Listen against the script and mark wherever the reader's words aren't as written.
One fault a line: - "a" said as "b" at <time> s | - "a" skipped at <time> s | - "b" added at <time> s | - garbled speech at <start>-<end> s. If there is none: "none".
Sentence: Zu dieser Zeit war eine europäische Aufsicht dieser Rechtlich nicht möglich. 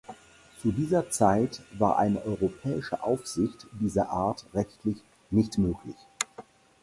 - "Art" added at 4.1 s